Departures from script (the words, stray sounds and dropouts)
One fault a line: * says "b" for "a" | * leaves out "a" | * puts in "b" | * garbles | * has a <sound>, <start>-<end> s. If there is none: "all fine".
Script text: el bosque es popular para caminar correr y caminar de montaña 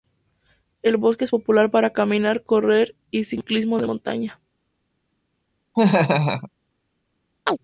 * says "ciclismo" for "caminar"
* has a laugh, 5.7-6.5 s
* has a chirp, 7.5-7.6 s